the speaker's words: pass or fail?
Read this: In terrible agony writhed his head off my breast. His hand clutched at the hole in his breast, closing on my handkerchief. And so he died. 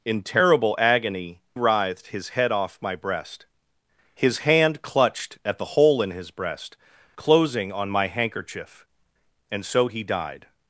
pass